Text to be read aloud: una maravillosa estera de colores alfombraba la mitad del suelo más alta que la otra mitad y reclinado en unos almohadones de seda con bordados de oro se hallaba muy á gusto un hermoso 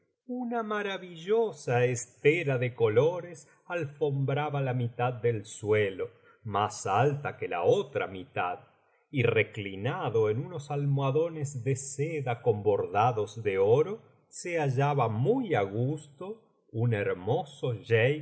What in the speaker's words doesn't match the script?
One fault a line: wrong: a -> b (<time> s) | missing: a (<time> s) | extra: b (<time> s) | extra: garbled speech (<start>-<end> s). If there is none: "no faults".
no faults